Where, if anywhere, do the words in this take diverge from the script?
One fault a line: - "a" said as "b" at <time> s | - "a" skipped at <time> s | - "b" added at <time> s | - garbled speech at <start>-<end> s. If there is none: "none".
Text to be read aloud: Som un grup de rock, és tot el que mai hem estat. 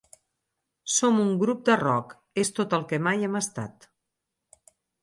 none